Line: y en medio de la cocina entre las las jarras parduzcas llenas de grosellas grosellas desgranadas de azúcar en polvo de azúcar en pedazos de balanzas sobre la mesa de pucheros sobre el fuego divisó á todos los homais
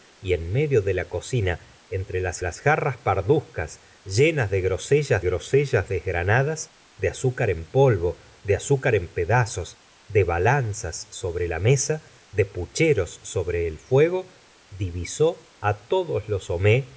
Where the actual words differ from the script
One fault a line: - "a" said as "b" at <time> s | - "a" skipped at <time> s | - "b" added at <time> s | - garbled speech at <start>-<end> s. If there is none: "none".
none